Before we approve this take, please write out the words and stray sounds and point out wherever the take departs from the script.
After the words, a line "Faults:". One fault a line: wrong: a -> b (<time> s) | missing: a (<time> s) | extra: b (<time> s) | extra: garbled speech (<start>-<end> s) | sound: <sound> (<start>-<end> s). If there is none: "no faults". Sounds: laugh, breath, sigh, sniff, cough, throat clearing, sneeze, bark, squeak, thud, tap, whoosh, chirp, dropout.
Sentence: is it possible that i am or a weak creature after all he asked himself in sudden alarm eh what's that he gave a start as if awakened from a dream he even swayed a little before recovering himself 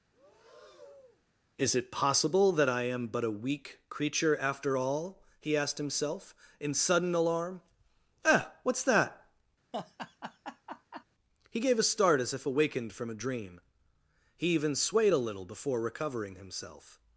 is it possible that i am but a weak creature after all he asked himself in sudden alarm eh what's that he gave a start as if awakened from a dream he even swayed a little before recovering himself
Faults:
sound: breath (0.1-1.3 s)
wrong: or -> but (3.1 s)
sound: laugh (9.7-11.0 s)